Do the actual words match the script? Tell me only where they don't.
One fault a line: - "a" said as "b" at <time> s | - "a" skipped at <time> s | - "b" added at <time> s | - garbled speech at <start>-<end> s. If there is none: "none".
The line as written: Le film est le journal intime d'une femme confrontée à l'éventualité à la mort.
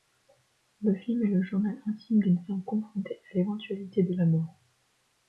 - "à" said as "de" at 4.0 s